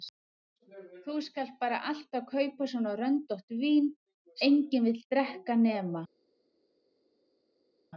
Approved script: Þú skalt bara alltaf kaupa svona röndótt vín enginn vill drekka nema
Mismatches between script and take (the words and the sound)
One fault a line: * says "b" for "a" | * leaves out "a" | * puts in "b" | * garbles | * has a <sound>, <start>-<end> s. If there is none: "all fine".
all fine